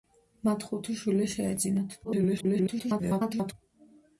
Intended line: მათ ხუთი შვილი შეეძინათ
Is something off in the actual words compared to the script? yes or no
yes